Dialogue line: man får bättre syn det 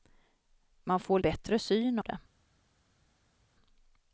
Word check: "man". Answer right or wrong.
right